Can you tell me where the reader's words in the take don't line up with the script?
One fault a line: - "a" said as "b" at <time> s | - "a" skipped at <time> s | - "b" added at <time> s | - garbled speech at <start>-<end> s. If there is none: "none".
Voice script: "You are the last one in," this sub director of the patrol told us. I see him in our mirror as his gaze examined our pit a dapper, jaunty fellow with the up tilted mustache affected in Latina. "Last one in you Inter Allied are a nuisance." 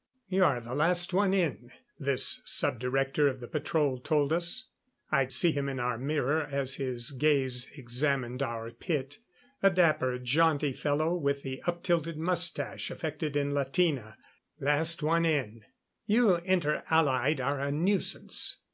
none